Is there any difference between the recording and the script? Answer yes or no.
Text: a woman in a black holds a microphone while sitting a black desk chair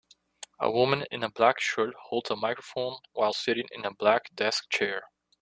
yes